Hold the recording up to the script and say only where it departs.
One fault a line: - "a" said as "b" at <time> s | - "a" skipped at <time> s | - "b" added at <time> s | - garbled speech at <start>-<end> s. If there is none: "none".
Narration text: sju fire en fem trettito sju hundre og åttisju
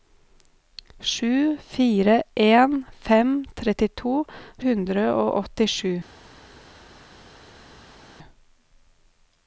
- "sju" skipped at 4.2 s